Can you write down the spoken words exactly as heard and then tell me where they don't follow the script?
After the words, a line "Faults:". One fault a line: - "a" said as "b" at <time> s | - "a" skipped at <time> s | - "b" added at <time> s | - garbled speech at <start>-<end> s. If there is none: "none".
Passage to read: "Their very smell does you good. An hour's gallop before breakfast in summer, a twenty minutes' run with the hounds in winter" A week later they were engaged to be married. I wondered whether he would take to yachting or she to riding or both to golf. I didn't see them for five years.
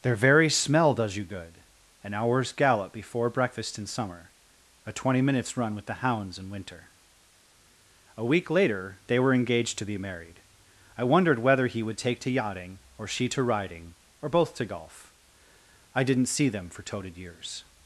"Their very smell does you good. An hour's gallop before breakfast in summer, a twenty minutes' run with the hounds in winter" A week later they were engaged to be married. I wondered whether he would take to yachting or she to riding or both to golf. I didn't see them for toted years.
Faults:
- "five" said as "toted" at 16.8 s